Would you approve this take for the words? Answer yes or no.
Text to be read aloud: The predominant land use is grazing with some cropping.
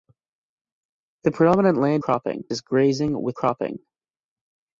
no